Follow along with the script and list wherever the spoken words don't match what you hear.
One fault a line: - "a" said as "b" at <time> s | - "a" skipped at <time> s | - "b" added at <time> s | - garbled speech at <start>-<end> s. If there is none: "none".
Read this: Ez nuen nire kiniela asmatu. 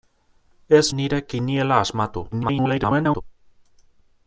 - "nuen" skipped at 0.9 s
- garbled speech at 2.3-3.2 s